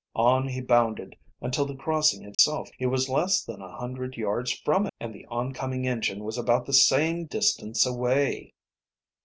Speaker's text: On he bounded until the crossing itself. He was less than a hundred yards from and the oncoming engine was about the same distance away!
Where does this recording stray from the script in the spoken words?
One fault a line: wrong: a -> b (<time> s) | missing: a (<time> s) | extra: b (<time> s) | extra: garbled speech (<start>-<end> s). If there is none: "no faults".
no faults